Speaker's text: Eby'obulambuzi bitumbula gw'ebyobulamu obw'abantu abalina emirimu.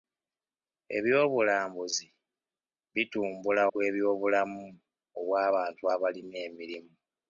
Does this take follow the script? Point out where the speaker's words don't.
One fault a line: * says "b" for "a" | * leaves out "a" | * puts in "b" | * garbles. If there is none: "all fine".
all fine